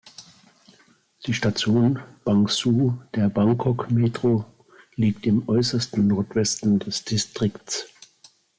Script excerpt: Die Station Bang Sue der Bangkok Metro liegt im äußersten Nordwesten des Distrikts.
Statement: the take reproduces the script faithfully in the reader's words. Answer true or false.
true